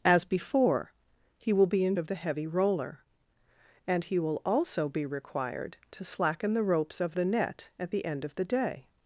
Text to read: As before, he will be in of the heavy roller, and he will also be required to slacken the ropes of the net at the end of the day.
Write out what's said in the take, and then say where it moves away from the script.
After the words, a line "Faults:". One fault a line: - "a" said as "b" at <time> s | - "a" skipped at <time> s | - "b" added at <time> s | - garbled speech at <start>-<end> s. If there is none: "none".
As before, he will be in of the heavy roller, and he will also be required to slacken the ropes of the net at the end of the day.
Faults:
none